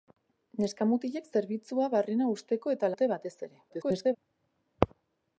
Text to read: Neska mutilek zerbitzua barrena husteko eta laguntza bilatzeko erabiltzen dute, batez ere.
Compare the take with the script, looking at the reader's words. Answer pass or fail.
fail